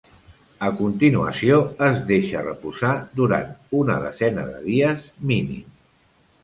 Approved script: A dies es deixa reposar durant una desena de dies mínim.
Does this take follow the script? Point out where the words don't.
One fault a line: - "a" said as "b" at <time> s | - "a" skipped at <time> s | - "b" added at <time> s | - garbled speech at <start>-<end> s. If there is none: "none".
- "dies" said as "continuació" at 0.8 s